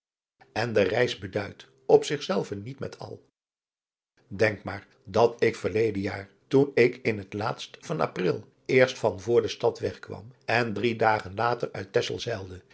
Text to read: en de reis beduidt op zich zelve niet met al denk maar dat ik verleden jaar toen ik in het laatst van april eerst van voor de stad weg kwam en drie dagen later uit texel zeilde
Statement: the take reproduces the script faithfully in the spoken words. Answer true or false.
true